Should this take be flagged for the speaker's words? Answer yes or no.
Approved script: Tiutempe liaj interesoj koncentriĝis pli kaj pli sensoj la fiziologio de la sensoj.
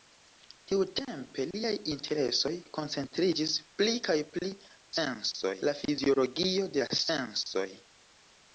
no